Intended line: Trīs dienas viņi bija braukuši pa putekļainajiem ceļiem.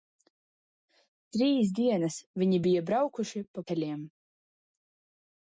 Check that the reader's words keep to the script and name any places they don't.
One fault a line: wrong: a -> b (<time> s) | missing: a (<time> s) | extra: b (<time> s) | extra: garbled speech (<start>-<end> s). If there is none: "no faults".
missing: putekļainajiem (3.7 s)